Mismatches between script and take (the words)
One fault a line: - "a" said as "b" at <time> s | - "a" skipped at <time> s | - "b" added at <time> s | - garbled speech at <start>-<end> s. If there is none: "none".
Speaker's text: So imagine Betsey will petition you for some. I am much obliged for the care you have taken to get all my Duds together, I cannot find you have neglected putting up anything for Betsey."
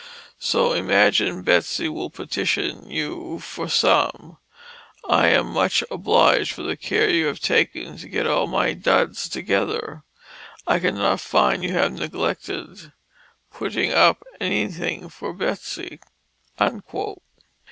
none